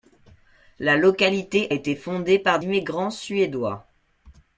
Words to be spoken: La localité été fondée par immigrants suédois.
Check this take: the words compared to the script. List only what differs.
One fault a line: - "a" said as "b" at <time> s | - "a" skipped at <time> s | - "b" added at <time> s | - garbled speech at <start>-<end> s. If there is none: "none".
none